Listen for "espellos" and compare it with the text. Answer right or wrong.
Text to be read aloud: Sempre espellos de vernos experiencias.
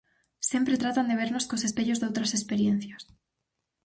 wrong